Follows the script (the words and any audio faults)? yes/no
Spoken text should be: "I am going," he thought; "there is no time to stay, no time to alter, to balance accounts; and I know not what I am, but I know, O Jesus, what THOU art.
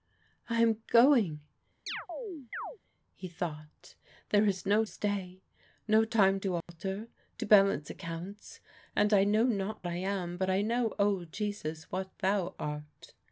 no